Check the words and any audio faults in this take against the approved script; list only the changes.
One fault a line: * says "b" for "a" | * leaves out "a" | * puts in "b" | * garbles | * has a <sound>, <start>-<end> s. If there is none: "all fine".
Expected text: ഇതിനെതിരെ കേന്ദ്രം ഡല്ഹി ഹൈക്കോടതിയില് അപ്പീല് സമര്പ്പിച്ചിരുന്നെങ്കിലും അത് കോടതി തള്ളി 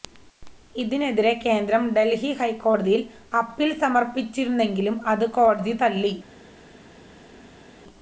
all fine